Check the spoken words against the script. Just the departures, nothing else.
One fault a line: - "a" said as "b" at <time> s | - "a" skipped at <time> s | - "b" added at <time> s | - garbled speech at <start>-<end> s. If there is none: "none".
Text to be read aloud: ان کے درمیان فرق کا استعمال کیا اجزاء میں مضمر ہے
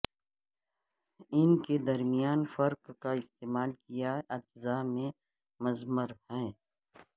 none